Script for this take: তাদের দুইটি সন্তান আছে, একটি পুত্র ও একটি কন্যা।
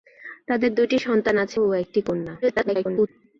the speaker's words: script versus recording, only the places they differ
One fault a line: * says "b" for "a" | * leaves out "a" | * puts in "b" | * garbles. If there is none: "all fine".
* leaves out "একটি পুত্র"
* garbles